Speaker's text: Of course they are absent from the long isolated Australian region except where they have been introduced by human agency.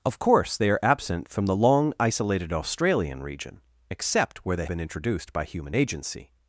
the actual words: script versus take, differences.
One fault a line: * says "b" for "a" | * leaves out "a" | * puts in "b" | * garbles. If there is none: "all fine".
* leaves out "have"